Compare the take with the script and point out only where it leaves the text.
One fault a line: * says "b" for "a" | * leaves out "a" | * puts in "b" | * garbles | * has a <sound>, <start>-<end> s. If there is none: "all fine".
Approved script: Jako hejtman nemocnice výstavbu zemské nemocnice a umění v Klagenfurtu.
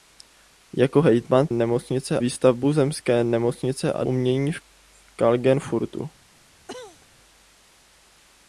* has a cough, 6.7-7.1 s